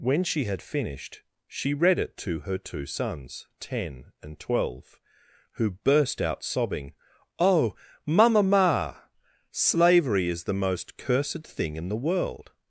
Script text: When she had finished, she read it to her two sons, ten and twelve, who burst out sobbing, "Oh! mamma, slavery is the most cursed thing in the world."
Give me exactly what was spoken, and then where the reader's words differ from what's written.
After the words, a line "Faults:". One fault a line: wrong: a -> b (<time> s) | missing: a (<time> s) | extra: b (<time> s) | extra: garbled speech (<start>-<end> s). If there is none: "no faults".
When she had finished, she read it to her two sons, ten and twelve, who burst out sobbing, "Oh! mamma, ma slavery is the most cursed thing in the world."
Faults:
extra: ma (8.4 s)